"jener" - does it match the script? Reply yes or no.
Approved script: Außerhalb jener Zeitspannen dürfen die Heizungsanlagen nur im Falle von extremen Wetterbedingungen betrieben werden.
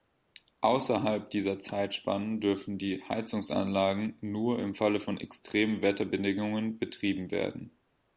no